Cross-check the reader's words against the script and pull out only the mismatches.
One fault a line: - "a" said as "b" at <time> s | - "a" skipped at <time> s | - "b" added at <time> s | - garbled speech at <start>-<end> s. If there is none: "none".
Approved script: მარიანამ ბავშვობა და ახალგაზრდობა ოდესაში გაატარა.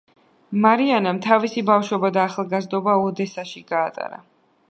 - "თავისი" added at 1.2 s